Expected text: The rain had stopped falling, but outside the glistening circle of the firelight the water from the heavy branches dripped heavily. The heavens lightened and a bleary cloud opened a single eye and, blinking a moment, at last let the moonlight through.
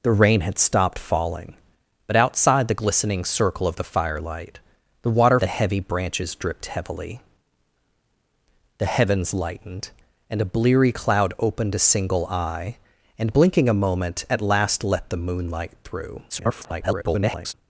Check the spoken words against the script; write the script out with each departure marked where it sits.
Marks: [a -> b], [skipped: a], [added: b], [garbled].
The rain had stopped falling, but outside the glistening circle of the firelight the water [skipped: from] the heavy branches dripped heavily. The heavens lightened and a bleary cloud opened a single eye and, blinking a moment, at last let the moonlight through. [garbled]